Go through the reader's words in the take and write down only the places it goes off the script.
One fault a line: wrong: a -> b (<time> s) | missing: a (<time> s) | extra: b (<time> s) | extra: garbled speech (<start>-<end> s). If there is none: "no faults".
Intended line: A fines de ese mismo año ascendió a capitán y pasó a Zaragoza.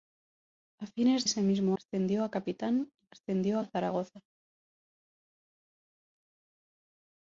missing: de (1.3 s)
missing: año (1.8 s)
wrong: pasó -> ascendió (3.1 s)